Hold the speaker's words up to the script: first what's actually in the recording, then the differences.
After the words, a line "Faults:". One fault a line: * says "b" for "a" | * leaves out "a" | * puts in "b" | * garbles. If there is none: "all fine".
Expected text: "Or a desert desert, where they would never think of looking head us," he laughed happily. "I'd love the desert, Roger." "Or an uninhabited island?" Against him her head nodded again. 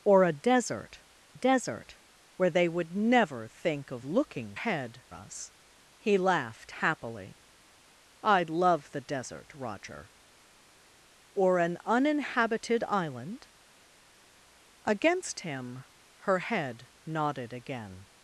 "Or a desert desert, where they would never think of looking head us," he laughed happily. "I'd love the desert, Roger." "Or an uninhabited island?" Against him her head nodded again.
Faults:
all fine